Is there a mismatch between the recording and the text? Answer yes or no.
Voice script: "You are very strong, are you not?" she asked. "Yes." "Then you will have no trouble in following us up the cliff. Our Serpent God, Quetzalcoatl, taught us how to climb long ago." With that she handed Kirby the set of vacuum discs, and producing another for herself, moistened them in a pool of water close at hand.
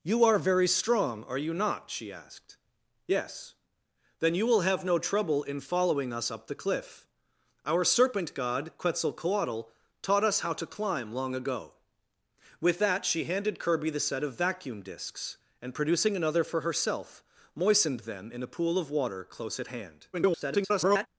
yes